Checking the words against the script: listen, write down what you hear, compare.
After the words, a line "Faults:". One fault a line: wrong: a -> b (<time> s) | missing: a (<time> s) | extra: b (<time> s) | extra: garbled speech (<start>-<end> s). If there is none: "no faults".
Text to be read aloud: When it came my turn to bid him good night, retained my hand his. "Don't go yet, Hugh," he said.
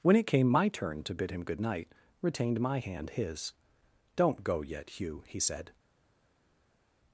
When it came my turn to bid him good night, retained my hand his. "Don't go yet, Hugh," he said.
Faults:
no faults